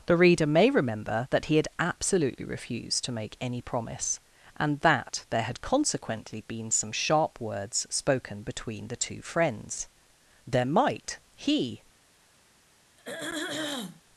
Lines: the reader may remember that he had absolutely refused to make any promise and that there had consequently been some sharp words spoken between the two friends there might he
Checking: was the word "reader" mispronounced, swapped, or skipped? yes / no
no